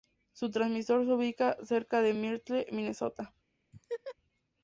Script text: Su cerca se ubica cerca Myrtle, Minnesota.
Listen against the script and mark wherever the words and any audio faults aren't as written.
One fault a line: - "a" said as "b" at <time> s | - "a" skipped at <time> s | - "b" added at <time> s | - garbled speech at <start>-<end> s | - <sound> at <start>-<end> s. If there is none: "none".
- "cerca" said as "transmisor" at 0.5 s
- "de" added at 2.0 s
- laugh at 3.7-4.2 s